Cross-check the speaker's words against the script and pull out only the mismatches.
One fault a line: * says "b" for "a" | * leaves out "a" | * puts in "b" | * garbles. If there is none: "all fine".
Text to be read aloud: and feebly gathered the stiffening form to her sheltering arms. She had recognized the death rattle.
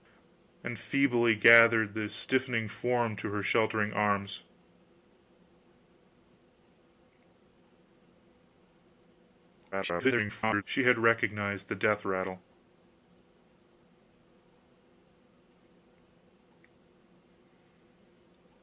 * garbles